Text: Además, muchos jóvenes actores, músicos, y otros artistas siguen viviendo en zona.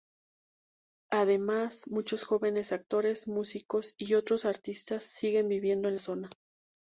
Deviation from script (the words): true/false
false